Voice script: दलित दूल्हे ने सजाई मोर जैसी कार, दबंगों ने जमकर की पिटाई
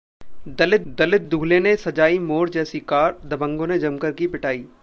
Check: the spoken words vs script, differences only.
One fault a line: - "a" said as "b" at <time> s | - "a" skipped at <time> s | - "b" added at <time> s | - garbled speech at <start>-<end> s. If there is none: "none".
- "दलित" added at 0.9 s